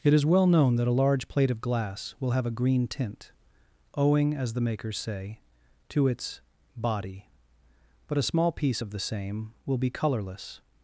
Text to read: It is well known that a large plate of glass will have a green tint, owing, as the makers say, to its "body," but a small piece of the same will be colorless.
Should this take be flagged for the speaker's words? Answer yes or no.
no